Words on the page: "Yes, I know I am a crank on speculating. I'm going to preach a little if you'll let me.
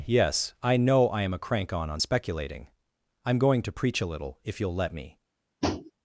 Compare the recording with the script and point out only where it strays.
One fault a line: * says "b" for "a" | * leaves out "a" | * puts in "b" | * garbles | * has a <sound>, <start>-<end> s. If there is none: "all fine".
* puts in "on"
* has a tap, 5.6-5.9 s